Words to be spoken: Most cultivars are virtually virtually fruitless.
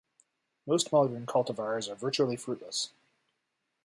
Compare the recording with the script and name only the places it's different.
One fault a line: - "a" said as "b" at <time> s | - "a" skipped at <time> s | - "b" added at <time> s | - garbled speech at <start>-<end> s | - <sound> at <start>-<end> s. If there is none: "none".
- "modern" added at 0.9 s
- "virtually" skipped at 2.4 s